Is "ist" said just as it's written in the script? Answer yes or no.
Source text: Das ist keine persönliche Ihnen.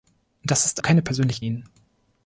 yes